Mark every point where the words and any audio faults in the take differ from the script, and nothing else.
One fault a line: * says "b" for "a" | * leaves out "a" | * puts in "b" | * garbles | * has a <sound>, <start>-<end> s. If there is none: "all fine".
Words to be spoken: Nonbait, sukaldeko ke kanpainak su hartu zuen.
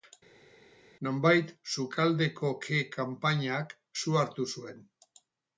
all fine